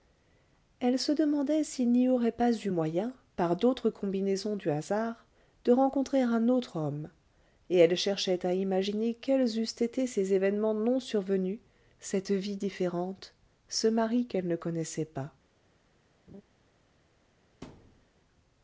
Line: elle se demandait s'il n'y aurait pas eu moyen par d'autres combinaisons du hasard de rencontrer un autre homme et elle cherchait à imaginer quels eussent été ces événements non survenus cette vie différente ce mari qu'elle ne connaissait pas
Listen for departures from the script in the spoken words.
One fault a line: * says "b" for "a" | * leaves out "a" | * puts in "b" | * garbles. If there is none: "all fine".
all fine